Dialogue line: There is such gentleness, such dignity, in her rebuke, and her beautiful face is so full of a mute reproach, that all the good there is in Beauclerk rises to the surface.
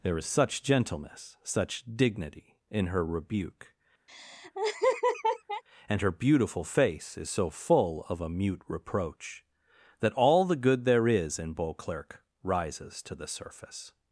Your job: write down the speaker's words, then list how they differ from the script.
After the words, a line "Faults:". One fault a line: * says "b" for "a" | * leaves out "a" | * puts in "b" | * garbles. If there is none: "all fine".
There is such gentleness, such dignity, in her rebuke, and her beautiful face is so full of a mute reproach, that all the good there is in Beauclerk rises to the surface.
Faults:
all fine